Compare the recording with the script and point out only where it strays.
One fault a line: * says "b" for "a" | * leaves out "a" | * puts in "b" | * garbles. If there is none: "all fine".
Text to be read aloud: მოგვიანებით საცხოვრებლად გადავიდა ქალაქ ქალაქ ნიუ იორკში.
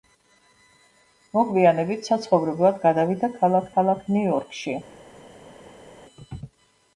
all fine